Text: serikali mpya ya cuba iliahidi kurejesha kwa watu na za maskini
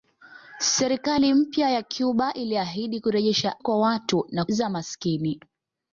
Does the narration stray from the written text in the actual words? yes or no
no